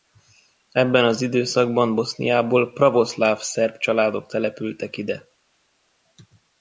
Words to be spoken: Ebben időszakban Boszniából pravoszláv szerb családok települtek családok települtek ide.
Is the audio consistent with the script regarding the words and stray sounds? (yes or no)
no